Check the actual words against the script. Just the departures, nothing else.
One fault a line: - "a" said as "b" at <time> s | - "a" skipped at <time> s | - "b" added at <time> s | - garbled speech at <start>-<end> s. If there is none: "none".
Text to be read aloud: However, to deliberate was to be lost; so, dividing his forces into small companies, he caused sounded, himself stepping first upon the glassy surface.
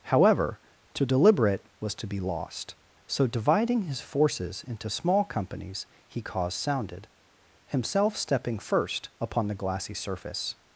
none